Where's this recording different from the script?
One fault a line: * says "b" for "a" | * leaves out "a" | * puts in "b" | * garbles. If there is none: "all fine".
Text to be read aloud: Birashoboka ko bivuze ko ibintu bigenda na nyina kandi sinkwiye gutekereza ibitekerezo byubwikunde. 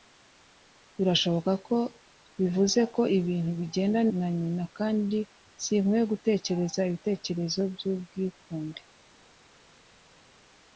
all fine